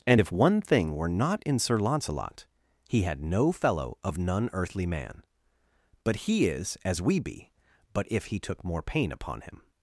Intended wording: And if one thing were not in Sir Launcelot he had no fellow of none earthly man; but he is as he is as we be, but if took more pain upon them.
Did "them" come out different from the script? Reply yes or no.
yes